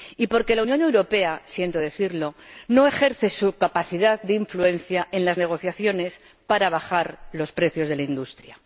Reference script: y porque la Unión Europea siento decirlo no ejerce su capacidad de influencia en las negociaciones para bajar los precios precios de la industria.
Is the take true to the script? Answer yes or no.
no